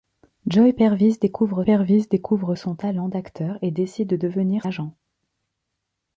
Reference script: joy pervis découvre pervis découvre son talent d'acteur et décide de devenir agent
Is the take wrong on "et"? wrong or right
right